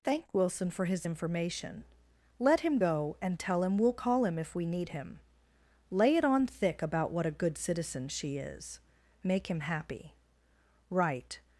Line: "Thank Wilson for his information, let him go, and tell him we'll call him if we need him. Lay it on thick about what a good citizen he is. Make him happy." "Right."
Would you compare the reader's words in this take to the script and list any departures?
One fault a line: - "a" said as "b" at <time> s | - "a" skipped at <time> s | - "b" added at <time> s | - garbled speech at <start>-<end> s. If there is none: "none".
- "he" said as "she" at 8.1 s